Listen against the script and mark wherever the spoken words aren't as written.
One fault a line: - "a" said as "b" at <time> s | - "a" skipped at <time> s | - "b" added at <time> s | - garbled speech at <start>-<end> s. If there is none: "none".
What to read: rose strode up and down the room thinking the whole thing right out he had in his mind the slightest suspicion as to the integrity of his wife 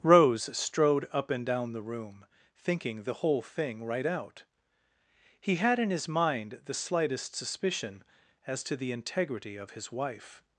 none